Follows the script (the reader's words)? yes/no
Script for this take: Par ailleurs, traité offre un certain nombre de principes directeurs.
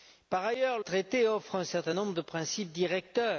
yes